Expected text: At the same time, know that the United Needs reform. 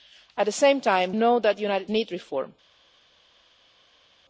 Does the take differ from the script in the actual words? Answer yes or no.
no